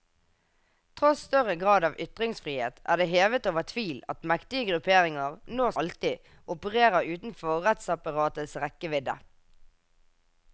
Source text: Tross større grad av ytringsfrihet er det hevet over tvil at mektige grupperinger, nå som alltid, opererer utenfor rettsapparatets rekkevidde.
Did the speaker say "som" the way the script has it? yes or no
no